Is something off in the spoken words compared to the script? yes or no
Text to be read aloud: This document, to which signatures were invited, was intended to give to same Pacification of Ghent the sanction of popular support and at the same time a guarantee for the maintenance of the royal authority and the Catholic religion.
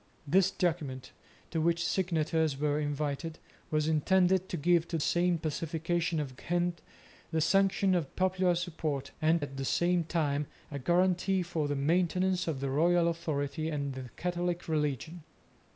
no